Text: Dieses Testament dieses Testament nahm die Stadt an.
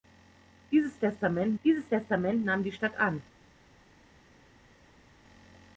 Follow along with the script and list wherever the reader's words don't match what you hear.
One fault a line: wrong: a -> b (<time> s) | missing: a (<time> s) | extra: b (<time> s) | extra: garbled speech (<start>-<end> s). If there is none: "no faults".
no faults